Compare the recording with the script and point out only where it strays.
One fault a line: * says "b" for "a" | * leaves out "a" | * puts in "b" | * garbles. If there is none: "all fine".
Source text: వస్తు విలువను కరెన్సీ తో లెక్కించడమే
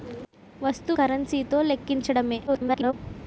* leaves out "విలువను"
* garbles